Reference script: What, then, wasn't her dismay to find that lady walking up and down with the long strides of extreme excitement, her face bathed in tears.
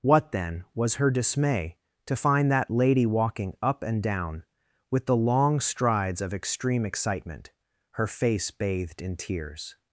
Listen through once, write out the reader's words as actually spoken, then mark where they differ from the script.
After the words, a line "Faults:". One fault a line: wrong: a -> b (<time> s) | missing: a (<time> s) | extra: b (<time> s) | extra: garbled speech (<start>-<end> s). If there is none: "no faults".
What, then, was her dismay to find that lady walking up and down with the long strides of extreme excitement, her face bathed in tears.
Faults:
wrong: wasn't -> was (0.7 s)